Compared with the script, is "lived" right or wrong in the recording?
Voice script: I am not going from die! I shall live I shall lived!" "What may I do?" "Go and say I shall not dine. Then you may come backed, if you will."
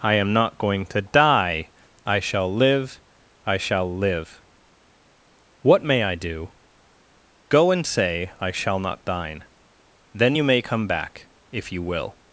wrong